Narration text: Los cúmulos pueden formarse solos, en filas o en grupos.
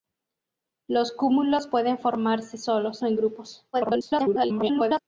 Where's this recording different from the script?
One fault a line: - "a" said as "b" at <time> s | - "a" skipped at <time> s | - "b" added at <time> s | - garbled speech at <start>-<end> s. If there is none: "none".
- "en filas" skipped at 3.0 s
- garbled speech at 3.7-5.0 s